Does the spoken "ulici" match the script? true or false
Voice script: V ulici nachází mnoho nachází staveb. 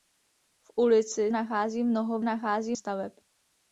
true